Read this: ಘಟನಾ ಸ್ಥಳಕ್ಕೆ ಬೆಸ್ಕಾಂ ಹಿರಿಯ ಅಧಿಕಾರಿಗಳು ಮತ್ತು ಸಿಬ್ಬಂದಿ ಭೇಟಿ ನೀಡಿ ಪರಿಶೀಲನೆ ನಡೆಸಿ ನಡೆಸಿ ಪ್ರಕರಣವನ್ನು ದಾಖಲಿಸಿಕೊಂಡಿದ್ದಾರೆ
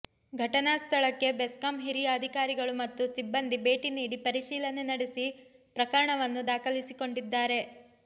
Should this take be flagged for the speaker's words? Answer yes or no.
yes